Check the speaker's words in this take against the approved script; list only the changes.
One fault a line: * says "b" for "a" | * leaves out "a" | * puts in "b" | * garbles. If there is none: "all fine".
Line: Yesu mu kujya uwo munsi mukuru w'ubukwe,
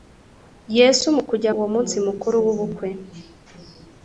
all fine